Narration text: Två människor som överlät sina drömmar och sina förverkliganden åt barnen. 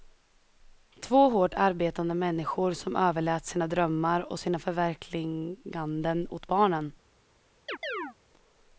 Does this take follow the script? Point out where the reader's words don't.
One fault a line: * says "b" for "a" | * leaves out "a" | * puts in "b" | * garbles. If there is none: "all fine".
* puts in "hårt arbetande"